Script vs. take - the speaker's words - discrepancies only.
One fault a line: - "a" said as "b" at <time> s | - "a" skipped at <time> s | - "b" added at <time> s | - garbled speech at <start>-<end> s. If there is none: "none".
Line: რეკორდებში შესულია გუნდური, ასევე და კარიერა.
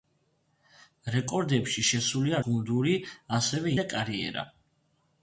none